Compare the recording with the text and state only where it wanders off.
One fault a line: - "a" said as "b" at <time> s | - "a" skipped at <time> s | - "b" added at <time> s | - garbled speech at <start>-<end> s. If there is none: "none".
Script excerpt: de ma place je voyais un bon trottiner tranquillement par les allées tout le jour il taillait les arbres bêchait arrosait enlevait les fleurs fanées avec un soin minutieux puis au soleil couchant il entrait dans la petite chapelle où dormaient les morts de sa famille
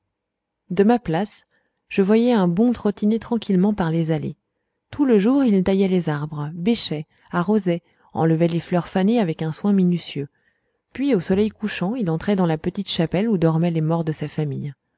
none